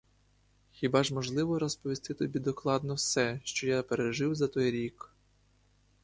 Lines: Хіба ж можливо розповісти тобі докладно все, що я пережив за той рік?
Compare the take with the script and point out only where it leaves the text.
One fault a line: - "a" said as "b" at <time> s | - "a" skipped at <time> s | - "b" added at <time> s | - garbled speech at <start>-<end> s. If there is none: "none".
none